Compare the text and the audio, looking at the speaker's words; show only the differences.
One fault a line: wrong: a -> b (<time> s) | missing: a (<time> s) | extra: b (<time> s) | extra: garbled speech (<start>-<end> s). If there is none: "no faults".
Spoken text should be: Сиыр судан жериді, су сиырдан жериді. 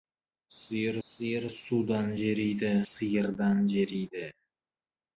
extra: сиыр (1.1 s)
missing: су (2.7 s)